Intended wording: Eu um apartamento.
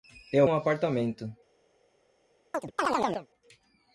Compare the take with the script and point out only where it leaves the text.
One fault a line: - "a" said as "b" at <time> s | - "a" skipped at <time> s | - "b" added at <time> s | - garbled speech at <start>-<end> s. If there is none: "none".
none